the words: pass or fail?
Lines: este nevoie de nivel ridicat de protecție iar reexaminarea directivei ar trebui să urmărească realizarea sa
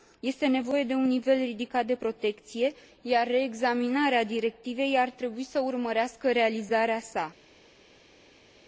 fail